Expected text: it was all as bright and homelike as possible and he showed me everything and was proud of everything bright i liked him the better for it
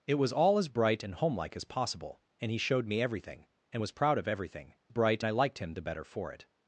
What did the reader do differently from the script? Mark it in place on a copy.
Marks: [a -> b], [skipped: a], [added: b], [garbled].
it was all as bright and homelike as possible and he showed me everything and was proud of everything bright i liked him the better for it